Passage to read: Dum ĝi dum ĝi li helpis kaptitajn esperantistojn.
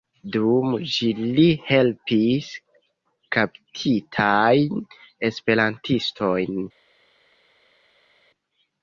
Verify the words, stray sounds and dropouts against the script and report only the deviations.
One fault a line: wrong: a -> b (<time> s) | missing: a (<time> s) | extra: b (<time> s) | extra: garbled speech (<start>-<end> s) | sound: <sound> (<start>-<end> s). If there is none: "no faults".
missing: dum ĝi (1.1 s)